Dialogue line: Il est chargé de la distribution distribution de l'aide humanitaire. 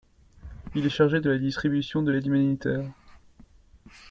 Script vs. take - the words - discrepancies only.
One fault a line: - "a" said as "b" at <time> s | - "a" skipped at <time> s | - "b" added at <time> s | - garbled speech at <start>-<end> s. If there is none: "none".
- "distribution" skipped at 2.0 s